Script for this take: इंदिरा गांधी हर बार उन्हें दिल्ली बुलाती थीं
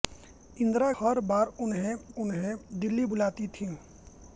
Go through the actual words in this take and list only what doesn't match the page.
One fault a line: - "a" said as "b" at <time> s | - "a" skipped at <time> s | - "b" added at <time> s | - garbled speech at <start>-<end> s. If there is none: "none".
- "गांधी" skipped at 0.9 s
- "उन्हें" added at 2.2 s